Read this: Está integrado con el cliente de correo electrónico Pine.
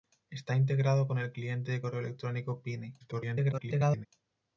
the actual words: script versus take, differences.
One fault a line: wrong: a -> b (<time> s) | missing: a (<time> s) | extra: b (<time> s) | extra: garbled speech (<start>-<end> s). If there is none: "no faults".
extra: garbled speech (3.0-4.1 s)